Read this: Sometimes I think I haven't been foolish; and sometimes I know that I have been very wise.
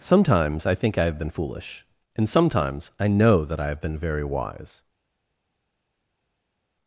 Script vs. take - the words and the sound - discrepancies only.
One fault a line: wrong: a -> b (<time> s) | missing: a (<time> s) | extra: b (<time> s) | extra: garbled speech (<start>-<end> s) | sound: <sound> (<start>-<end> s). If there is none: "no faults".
wrong: haven't -> have (1.0 s)